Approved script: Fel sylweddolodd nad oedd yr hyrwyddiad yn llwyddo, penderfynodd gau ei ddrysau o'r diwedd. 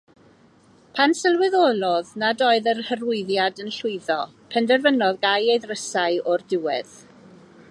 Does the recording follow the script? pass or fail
fail